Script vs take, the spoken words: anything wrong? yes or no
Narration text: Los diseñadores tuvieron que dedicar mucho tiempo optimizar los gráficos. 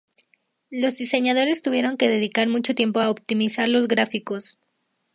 yes